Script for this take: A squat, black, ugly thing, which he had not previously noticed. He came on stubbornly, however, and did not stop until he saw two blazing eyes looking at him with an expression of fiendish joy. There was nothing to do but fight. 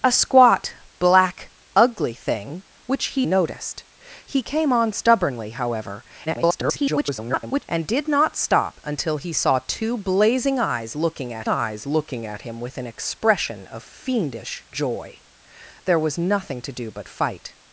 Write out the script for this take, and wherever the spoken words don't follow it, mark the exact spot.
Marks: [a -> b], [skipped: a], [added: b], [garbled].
A squat, black, ugly thing, which he [skipped: had not previously] noticed. He came on stubbornly, however, [garbled] and did not stop until he saw two blazing eyes looking at [added: eyes looking at] him with an expression of fiendish joy. There was nothing to do but fight.